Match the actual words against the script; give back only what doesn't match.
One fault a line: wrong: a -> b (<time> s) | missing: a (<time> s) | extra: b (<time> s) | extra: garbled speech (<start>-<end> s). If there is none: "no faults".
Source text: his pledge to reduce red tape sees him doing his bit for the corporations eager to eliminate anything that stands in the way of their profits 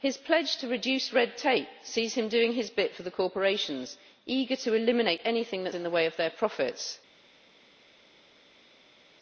missing: stands (5.8 s)